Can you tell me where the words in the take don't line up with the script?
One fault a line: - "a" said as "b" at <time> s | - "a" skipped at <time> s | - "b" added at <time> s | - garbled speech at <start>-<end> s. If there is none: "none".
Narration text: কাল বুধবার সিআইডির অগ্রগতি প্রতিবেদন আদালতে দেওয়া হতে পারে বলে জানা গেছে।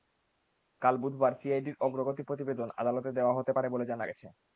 none